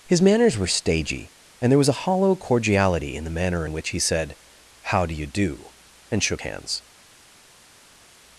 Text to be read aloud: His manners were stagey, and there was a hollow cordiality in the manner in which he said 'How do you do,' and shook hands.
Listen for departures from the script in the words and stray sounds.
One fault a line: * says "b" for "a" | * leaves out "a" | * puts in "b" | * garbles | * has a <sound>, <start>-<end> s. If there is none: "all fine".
all fine